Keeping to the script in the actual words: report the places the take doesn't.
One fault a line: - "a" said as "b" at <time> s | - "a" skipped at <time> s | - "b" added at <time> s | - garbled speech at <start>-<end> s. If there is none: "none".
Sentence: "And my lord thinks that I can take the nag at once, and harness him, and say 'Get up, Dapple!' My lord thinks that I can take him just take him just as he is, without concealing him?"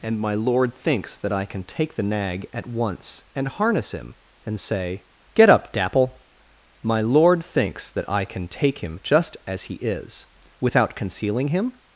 - "take him just" skipped at 9.4 s